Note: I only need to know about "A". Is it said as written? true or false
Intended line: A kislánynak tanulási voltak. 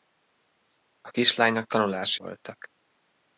true